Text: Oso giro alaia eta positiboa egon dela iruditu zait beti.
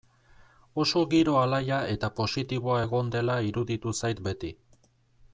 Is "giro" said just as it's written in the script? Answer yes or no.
yes